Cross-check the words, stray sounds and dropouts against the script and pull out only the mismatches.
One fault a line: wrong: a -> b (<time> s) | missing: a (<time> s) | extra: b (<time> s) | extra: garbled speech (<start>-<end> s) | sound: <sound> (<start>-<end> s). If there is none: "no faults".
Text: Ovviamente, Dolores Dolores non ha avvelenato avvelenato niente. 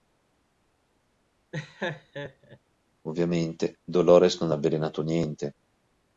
sound: laugh (1.5-2.6 s)
missing: Dolores (4.4 s)
missing: avvelenato (5.0 s)